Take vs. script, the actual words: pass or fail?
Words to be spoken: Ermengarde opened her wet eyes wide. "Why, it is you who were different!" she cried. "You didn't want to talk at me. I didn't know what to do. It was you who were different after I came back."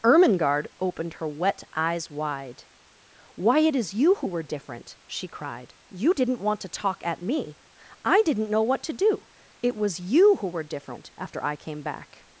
pass